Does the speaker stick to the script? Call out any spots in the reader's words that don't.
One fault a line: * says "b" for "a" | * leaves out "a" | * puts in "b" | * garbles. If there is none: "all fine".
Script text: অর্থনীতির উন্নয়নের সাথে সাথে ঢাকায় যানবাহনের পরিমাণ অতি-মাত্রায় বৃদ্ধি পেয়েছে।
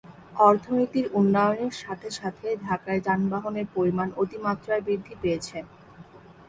all fine